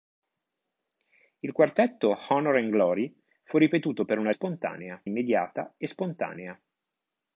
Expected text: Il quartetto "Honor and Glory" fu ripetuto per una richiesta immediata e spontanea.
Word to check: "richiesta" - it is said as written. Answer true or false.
false